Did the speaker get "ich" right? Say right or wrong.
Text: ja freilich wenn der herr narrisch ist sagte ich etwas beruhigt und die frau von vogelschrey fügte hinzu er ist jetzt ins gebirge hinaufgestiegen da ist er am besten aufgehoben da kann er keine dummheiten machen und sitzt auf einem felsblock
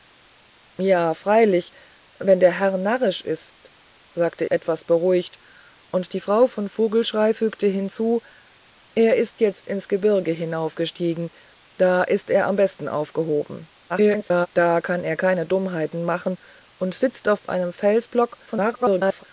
wrong